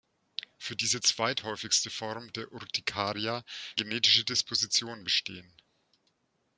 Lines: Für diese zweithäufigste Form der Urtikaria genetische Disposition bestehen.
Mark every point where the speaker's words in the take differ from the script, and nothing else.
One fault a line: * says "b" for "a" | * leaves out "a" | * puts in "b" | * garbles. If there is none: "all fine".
all fine